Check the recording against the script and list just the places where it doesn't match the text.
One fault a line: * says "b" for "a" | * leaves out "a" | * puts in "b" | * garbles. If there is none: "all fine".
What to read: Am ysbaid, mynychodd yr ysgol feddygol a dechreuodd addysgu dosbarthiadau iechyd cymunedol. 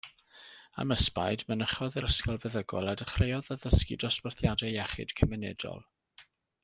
all fine